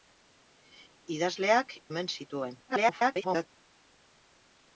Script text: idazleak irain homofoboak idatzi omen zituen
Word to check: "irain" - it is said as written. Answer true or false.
false